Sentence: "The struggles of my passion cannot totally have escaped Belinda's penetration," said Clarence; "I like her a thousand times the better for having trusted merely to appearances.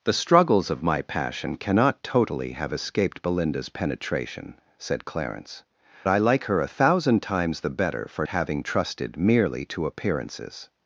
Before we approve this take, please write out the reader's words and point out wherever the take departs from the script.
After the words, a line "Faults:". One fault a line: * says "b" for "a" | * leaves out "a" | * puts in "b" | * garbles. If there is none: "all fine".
"The struggles of my passion cannot totally have escaped Belinda's penetration," said Clarence; "I like her a thousand times the better for having trusted merely to appearances.
Faults:
all fine